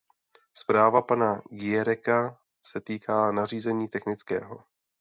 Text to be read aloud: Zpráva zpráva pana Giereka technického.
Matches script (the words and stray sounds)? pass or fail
fail